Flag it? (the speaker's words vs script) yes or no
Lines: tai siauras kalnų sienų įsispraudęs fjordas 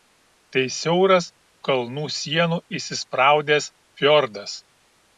no